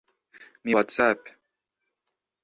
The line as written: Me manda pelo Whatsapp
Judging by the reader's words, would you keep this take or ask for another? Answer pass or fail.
fail